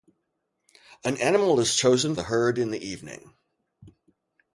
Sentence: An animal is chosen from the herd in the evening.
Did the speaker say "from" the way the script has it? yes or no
no